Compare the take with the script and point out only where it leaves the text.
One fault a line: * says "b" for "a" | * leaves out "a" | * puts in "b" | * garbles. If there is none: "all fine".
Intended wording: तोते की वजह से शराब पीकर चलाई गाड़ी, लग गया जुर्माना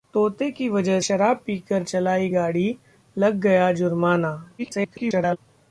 * leaves out "से"
* garbles